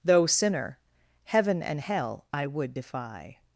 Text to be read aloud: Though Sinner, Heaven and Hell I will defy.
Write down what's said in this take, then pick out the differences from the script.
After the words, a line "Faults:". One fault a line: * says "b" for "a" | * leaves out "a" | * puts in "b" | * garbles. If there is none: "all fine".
Though Sinner, Heaven and Hell I would defy.
Faults:
* says "would" for "will"